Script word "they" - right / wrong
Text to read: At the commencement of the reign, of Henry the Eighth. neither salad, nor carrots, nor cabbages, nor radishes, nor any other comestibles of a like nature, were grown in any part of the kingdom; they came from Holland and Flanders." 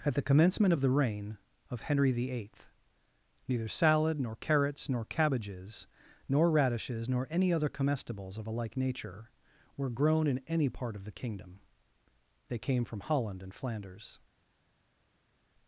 right